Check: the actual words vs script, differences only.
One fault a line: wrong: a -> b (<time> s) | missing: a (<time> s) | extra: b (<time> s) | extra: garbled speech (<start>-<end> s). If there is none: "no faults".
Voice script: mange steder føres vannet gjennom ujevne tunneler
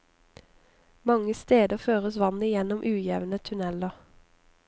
no faults